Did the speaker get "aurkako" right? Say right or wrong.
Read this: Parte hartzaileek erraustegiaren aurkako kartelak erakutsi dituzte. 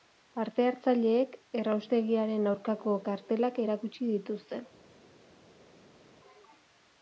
right